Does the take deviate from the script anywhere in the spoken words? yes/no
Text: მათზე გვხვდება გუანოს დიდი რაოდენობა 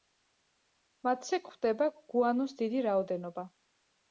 no